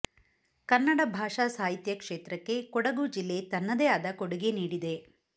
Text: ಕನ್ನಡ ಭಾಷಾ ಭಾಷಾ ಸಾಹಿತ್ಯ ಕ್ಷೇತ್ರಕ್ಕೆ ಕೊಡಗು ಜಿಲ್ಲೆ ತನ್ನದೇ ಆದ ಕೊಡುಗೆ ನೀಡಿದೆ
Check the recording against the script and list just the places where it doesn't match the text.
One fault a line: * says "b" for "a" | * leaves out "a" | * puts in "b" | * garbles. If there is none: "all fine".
* leaves out "ಭಾಷಾ"